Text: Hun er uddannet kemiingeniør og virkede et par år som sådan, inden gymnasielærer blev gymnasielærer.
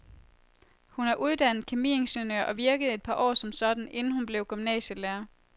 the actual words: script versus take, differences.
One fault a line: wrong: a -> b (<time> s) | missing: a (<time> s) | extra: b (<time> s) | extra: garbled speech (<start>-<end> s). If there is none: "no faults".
wrong: gymnasielærer -> hun (4.1 s)